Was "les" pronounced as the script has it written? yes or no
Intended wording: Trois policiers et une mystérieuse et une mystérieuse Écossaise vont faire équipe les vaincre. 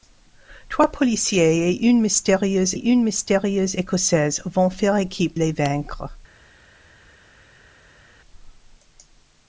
yes